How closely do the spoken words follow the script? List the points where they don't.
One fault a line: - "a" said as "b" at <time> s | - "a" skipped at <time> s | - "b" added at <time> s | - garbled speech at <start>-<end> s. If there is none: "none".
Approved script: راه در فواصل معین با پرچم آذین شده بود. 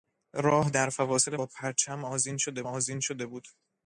- "معین" skipped at 1.4 s
- "آذین شده" added at 2.7 s